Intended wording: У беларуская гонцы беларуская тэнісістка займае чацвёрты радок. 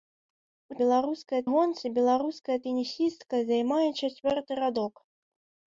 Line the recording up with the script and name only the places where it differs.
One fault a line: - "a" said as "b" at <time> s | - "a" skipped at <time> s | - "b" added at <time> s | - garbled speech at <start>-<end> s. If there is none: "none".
none